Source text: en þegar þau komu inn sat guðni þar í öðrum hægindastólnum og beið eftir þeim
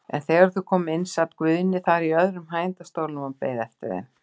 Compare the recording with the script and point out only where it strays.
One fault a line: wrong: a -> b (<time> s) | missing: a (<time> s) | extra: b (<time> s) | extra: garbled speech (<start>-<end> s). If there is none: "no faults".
no faults